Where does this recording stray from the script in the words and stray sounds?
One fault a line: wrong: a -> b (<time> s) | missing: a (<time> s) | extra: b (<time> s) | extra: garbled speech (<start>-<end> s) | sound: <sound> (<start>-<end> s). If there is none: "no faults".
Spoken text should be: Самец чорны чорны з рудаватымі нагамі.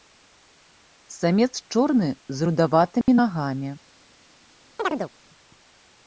missing: чорны (2.1 s)
sound: dropout (3.0-3.1 s)
sound: chirp (4.8-5.1 s)